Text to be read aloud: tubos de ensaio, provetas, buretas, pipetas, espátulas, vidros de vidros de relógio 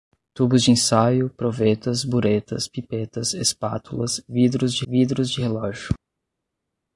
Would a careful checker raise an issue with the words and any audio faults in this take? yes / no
no